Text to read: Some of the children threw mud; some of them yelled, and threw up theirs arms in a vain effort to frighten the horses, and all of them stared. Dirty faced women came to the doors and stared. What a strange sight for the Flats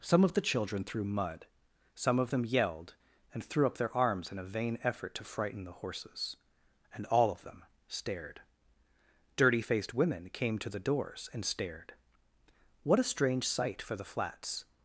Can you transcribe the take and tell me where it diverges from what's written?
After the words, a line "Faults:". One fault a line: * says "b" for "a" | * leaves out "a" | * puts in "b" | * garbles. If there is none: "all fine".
Some of the children threw mud; some of them yelled, and threw up their arms in a vain effort to frighten the horses, and all of them stared. Dirty faced women came to the doors and stared. What a strange sight for the Flats
Faults:
* says "their" for "theirs"